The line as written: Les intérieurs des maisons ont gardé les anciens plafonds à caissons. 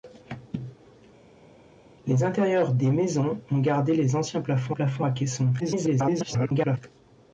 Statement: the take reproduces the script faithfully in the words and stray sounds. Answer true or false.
false